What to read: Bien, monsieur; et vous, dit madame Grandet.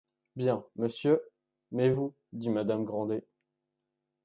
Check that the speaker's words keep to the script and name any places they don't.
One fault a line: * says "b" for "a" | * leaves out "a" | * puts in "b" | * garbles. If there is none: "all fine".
* says "mais" for "et"